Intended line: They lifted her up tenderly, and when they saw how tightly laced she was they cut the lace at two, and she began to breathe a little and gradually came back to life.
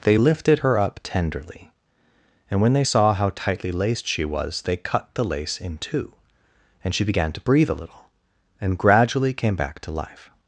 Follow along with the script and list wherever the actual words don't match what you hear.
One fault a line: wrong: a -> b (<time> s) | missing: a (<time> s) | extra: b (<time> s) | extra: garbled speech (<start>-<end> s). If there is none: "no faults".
wrong: at -> in (5.6 s)